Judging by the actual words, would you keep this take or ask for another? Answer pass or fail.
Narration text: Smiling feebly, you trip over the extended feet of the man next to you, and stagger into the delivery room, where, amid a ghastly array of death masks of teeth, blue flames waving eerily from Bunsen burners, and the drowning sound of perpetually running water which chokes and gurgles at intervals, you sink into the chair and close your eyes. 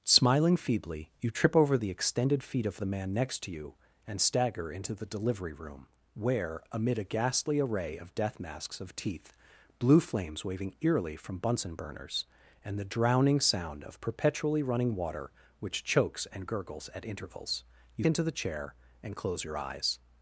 fail